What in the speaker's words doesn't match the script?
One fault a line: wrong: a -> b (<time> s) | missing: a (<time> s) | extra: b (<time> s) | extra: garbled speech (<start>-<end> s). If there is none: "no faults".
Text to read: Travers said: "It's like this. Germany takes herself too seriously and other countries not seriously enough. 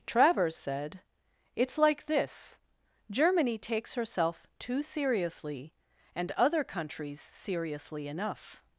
missing: not (7.2 s)